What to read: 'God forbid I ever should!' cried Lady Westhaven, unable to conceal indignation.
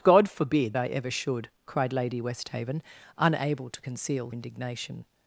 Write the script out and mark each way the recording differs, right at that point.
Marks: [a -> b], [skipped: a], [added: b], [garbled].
'God forbid I ever should!' cried Lady Westhaven, unable to conceal indignation.